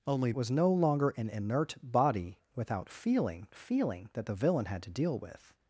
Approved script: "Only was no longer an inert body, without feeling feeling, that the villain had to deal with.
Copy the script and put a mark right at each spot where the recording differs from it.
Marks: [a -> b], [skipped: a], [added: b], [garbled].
"Only was no longer an inert body, without feeling feeling, that the villain had to deal with.